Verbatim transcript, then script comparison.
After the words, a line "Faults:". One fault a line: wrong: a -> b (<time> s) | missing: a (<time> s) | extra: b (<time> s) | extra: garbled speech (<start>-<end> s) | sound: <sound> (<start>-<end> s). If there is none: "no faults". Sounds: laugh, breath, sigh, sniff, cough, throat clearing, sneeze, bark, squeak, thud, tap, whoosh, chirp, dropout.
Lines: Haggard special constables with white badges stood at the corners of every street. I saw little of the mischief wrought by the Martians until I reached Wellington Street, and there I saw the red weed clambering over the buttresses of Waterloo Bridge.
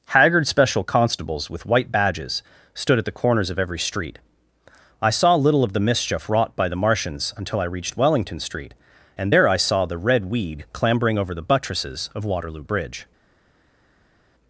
Haggard special constables with white badges stood at the corners of every street. I saw little of the mischief wrought by the Martians until I reached Wellington Street, and there I saw the red weed clambering over the buttresses of Waterloo Bridge.
Faults:
no faults